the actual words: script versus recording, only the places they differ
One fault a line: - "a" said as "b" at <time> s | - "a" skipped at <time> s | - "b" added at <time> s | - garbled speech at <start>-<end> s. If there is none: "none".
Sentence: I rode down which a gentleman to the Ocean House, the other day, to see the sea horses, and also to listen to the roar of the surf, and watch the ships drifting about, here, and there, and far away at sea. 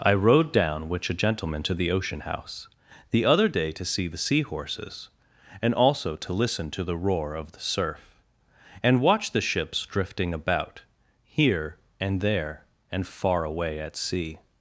none